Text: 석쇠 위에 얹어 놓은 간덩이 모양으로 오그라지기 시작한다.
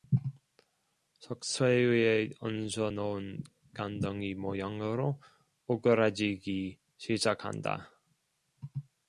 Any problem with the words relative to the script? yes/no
no